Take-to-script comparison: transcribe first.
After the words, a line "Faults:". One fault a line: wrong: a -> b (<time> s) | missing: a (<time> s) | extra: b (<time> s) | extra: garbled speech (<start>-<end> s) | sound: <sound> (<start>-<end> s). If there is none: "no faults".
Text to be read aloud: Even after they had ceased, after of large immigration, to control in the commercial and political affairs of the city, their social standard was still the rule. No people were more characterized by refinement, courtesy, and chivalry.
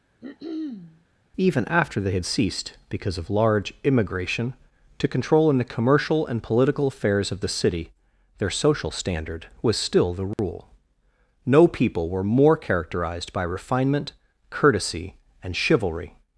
Even after they had ceased, because of large immigration, to control in the commercial and political affairs of the city, their social standard was still the rule. No people were more characterized by refinement, courtesy, and chivalry.
Faults:
sound: throat clearing (0.2-1.1 s)
wrong: after -> because (2.9 s)
sound: dropout (10.3-10.4 s)